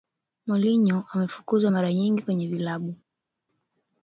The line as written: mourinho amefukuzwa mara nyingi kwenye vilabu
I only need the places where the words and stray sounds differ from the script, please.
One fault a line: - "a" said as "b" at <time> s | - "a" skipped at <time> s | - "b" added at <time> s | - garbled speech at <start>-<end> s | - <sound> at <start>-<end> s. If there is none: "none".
none